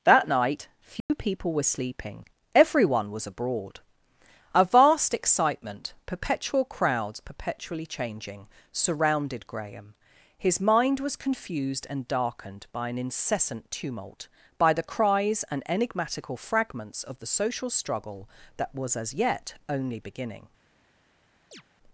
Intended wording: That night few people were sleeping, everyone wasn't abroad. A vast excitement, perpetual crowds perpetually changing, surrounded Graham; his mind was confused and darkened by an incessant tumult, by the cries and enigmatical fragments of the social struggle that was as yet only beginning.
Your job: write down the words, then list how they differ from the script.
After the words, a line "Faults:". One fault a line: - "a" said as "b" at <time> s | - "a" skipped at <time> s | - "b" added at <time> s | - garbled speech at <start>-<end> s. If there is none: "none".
That night few people were sleeping, everyone was abroad. A vast excitement, perpetual crowds perpetually changing, surrounded Graham; his mind was confused and darkened by an incessant tumult, by the cries and enigmatical fragments of the social struggle that was as yet only beginning.
Faults:
- "wasn't" said as "was" at 3.1 s